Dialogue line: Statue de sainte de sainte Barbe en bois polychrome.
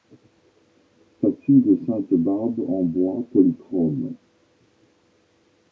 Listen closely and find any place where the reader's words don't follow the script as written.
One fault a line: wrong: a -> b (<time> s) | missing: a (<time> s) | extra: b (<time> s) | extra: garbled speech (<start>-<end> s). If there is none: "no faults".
missing: de sainte (2.1 s)